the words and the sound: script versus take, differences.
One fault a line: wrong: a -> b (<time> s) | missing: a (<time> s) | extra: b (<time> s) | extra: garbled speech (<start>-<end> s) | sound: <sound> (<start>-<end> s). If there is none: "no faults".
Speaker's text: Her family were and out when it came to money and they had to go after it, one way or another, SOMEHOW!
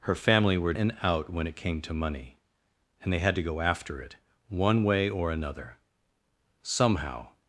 no faults